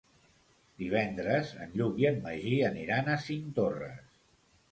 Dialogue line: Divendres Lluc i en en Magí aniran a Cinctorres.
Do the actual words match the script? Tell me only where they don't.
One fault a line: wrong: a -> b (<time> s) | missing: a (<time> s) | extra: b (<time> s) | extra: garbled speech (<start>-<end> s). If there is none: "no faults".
extra: en (1.6 s)
missing: en (2.2 s)